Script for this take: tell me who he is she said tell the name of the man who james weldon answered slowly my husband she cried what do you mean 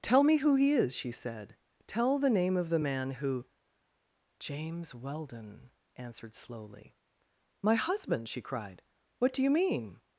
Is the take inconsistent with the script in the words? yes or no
no